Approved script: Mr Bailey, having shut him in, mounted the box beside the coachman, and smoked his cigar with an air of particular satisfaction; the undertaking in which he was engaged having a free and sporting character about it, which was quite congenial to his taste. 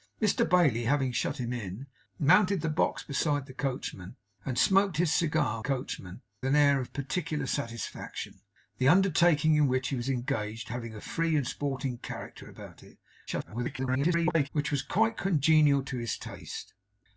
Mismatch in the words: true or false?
true